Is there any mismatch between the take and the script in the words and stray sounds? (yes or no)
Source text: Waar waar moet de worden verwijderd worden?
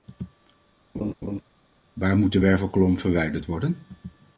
yes